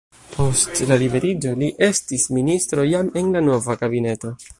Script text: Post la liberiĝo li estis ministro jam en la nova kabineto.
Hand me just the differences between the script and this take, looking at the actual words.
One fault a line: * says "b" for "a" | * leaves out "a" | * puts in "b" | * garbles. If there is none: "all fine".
all fine